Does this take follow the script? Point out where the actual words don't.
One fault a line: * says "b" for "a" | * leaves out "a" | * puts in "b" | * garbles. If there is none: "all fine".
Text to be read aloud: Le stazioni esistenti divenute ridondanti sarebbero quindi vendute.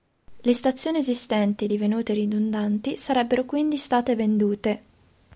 * puts in "state"